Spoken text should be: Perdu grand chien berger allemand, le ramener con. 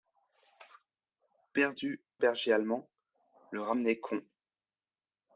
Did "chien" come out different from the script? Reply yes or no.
yes